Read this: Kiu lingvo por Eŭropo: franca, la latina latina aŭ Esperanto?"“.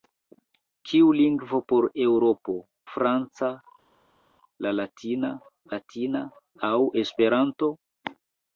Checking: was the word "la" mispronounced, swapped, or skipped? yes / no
no